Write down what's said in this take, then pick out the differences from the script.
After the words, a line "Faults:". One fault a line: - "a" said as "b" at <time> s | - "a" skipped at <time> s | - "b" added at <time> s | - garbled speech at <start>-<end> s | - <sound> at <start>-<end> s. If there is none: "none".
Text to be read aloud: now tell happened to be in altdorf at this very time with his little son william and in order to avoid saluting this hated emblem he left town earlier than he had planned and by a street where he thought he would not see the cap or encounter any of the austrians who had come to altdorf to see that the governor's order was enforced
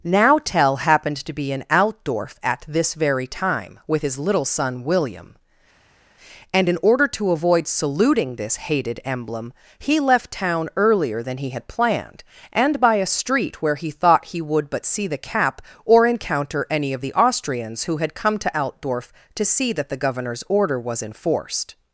now tell happened to be in altdorf at this very time with his little son william and in order to avoid saluting this hated emblem he left town earlier than he had planned and by a street where he thought he would but see the cap or encounter any of the austrians who had come to altdorf to see that the governor's order was enforced
Faults:
- "not" said as "but" at 14.7 s